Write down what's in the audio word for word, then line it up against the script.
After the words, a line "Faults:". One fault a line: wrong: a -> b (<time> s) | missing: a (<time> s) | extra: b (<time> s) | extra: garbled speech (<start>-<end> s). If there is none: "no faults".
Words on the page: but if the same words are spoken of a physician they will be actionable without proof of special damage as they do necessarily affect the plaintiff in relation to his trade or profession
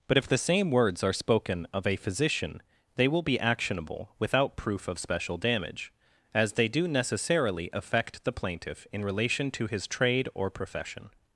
but if the same words are spoken of a physician they will be actionable without proof of special damage as they do necessarily affect the plaintiff in relation to his trade or profession
Faults:
no faults